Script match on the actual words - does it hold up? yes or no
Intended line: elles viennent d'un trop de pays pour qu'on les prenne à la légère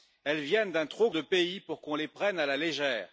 yes